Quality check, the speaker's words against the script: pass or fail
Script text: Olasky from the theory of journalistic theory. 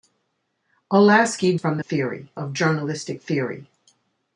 pass